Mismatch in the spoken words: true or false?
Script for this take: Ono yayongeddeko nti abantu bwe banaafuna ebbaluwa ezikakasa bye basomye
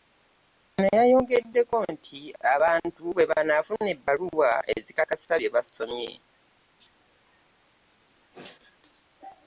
false